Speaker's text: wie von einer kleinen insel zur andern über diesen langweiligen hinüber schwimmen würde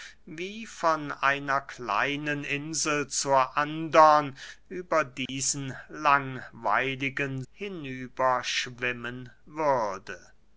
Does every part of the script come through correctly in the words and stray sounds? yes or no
no